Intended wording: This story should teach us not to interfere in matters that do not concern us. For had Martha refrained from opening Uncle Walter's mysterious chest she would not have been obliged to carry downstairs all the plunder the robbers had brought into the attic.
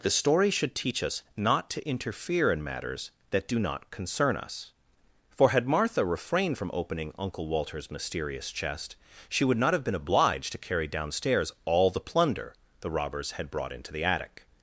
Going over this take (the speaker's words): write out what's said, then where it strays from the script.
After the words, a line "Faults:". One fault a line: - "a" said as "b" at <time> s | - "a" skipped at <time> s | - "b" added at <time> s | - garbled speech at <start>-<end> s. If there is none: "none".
The story should teach us not to interfere in matters that do not concern us. For had Martha refrained from opening Uncle Walter's mysterious chest she would not have been obliged to carry downstairs all the plunder the robbers had brought into the attic.
Faults:
- "This" said as "The" at 0.0 s